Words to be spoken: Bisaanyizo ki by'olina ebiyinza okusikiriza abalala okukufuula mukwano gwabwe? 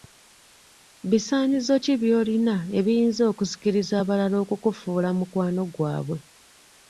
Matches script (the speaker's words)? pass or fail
pass